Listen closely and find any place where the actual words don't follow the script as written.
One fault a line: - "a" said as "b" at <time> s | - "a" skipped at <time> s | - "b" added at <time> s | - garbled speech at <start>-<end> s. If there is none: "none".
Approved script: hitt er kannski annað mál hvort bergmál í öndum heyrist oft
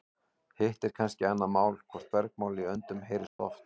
none